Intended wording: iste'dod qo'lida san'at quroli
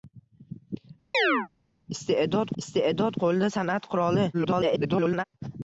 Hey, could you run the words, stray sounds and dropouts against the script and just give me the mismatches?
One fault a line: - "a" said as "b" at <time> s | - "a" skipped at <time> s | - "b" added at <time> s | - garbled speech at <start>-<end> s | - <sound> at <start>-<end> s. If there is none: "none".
- chirp at 1.1-1.5 s
- "iste'dod" added at 2.6 s
- garbled speech at 4.3-5.2 s